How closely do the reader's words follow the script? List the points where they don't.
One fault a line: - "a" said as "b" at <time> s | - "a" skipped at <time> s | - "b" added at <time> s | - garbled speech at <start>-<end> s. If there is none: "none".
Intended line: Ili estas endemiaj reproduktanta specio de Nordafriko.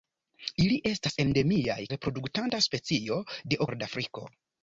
none